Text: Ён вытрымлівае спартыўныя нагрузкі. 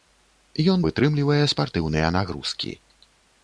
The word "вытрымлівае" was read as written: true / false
true